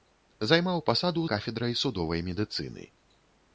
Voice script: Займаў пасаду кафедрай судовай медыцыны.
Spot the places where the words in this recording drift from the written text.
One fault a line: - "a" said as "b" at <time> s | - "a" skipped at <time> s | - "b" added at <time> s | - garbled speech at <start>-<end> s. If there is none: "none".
none